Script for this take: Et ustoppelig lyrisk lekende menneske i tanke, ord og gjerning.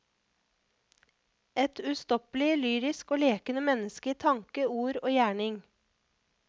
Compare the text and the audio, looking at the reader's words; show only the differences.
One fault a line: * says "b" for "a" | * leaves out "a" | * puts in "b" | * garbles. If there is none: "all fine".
* puts in "og"